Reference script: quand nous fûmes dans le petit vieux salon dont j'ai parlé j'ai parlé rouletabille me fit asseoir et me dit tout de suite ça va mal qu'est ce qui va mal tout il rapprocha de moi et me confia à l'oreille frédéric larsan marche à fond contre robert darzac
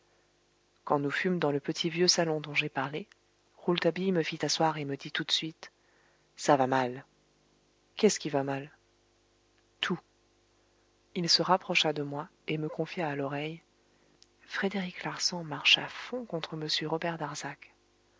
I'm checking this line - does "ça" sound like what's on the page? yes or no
yes